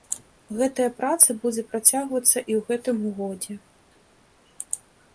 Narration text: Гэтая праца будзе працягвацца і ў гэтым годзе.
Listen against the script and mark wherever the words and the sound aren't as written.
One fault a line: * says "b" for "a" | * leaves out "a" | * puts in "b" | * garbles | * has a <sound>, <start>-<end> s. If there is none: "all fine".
all fine